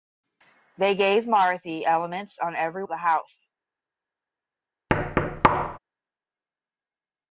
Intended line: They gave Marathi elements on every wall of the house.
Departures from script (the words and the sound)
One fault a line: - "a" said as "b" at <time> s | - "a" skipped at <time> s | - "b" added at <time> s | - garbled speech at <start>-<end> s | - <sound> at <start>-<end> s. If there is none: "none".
- "wall" skipped at 2.8 s
- thud at 4.9-5.8 s